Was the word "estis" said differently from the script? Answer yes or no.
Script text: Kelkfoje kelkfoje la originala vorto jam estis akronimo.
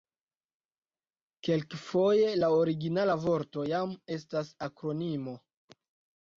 yes